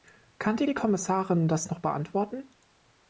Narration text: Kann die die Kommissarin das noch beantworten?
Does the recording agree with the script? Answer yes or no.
yes